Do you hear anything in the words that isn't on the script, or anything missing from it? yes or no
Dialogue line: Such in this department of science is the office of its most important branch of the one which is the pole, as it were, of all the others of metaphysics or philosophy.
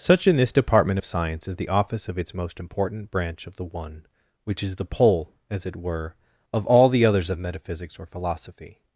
no